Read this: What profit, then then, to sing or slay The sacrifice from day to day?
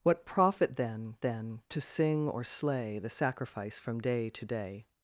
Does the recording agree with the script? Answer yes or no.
yes